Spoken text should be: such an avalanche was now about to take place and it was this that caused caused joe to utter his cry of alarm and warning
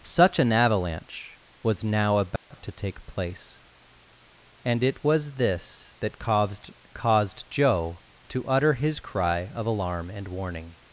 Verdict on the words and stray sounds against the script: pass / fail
fail